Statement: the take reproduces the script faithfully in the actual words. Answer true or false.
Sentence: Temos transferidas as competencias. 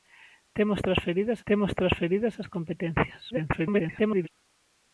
false